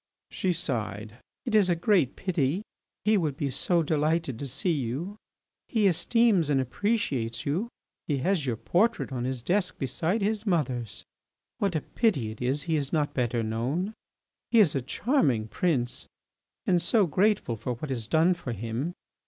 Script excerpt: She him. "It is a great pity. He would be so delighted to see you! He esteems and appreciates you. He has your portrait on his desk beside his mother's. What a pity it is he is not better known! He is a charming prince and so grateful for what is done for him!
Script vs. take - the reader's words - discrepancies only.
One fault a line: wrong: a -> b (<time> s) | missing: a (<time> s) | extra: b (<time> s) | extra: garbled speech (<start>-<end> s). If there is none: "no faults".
wrong: him -> sighed (0.5 s)